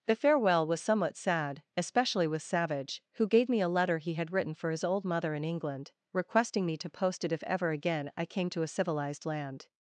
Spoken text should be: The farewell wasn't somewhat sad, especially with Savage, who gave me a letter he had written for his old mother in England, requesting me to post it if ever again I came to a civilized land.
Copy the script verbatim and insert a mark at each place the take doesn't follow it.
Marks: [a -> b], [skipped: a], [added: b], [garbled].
The farewell [wasn't -> was] somewhat sad, especially with Savage, who gave me a letter he had written for his old mother in England, requesting me to post it if ever again I came to a civilized land.